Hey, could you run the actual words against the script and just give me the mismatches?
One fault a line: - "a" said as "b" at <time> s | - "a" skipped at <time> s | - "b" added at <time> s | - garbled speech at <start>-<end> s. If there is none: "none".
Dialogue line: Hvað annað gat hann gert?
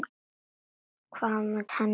- "gat" skipped at 1.7 s